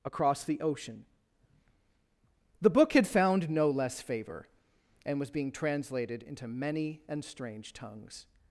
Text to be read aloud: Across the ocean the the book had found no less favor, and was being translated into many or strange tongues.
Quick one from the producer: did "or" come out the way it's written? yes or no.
no